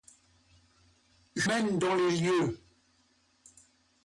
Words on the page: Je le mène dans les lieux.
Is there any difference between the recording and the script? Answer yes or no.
yes